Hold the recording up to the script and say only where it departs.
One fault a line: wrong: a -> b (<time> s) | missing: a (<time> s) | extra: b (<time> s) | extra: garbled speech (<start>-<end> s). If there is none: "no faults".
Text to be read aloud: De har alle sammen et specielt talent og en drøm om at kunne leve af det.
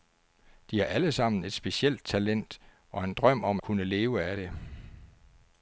missing: at (3.6 s)